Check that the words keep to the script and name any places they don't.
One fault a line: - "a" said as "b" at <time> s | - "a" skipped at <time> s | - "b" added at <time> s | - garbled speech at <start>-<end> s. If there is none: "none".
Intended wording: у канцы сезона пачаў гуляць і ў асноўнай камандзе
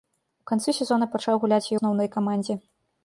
- "ў" skipped at 1.8 s